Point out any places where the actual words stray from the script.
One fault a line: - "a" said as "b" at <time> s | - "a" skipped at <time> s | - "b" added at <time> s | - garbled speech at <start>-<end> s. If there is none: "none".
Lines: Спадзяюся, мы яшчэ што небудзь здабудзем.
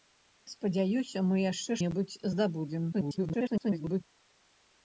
- "што" skipped at 1.8 s
- garbled speech at 2.9-4.0 s